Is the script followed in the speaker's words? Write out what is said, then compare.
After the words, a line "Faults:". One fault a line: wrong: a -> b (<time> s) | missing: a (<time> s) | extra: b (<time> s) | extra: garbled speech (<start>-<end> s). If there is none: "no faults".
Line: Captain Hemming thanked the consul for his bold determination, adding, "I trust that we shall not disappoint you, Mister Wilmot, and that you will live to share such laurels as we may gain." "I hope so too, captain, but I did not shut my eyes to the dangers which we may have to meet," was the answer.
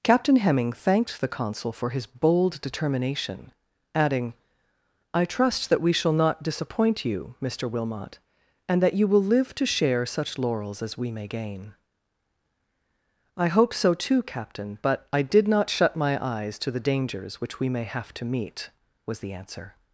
Captain Hemming thanked the consul for his bold determination, adding, "I trust that we shall not disappoint you, Mister Wilmot, and that you will live to share such laurels as we may gain." "I hope so too, captain, but I did not shut my eyes to the dangers which we may have to meet," was the answer.
Faults:
no faults